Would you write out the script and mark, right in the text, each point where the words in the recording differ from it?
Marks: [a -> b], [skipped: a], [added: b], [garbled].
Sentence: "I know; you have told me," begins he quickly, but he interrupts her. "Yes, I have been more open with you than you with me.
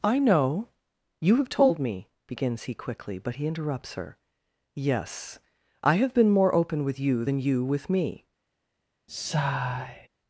"I know; you have told me," begins he quickly, but he interrupts her. "Yes, I have been more open with you than you with me.